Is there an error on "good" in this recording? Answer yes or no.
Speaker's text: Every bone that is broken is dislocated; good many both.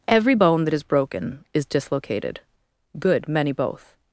no